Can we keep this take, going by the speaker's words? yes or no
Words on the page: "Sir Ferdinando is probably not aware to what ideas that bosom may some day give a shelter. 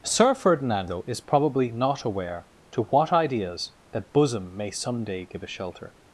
yes